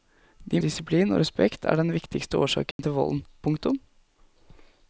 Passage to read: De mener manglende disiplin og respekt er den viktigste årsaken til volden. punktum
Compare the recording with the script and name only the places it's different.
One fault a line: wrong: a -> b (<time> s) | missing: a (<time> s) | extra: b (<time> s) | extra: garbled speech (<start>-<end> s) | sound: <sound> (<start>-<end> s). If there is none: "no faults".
missing: mener manglende (0.6 s)
sound: dropout (2.7-2.8 s)